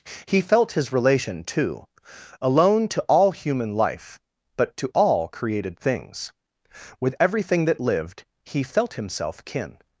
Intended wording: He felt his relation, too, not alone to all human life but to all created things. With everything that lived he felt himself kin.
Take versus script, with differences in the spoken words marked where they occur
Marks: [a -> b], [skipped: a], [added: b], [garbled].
He felt his relation, too, [skipped: not] alone to all human life but to all created things. With everything that lived he felt himself kin.